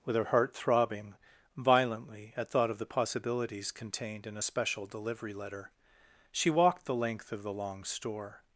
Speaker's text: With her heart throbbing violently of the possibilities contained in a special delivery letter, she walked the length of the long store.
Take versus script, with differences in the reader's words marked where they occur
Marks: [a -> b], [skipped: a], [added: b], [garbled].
With her heart throbbing violently [added: at thought] of the possibilities contained in a special delivery letter, she walked the length of the long store.